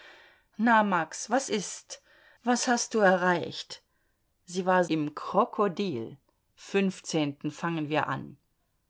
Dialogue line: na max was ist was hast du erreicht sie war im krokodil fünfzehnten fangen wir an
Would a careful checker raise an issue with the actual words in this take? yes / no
no